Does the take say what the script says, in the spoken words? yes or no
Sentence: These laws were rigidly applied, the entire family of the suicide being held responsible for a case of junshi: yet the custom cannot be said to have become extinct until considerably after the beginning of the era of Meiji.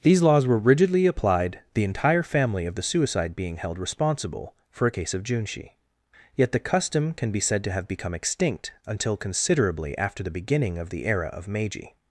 no